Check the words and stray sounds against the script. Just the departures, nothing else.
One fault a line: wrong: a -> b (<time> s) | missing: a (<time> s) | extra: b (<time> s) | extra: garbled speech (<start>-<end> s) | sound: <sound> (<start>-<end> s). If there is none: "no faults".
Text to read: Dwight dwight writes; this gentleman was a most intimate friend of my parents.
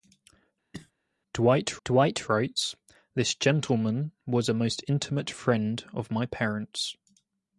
sound: cough (0.7-0.9 s)